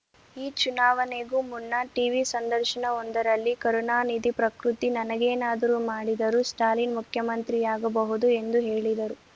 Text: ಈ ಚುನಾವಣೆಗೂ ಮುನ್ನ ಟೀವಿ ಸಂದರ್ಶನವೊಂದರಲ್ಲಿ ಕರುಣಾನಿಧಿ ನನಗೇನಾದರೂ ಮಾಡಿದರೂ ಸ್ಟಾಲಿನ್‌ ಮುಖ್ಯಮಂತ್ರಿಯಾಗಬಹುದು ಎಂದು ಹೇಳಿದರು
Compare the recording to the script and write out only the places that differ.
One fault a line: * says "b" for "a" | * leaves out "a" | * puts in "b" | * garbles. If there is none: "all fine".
* puts in "ಪ್ರಕೃತಿ"